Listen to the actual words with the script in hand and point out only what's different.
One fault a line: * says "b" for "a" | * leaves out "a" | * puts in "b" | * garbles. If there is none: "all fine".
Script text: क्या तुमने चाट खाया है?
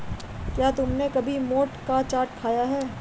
* puts in "कभी मोठ का"